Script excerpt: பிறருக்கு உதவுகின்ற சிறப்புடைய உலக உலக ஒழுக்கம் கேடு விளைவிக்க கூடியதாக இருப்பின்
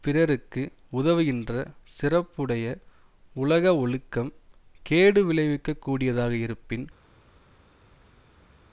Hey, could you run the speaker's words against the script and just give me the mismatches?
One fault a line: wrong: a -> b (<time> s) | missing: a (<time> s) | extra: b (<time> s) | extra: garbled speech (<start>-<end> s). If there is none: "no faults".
missing: உலக (3.7 s)